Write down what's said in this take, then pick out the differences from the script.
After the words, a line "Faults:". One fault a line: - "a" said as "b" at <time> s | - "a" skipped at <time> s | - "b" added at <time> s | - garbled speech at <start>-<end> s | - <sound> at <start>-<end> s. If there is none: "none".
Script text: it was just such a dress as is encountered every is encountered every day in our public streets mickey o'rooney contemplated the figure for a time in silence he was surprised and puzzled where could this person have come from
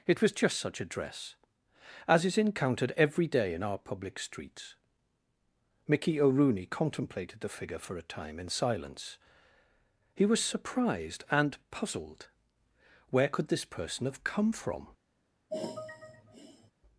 it was just such a dress as is encountered every day in our public streets mickey o'rooney contemplated the figure for a time in silence he was surprised and puzzled where could this person have come from
Faults:
- "is encountered every" skipped at 3.3 s
- sigh at 15.5-16.7 s